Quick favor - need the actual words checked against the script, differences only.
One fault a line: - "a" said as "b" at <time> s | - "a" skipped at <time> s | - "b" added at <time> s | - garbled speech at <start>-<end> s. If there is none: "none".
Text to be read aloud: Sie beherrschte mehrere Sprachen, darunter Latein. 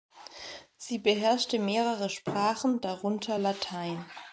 none